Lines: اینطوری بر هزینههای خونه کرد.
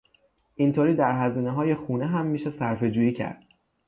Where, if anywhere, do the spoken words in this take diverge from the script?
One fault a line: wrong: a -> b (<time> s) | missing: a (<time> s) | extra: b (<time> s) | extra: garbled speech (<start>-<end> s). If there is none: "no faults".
wrong: بر -> در (0.9 s)
extra: هم میشه صرفهجویی (2.1 s)